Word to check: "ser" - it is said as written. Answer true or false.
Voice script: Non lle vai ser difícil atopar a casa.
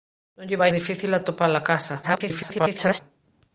false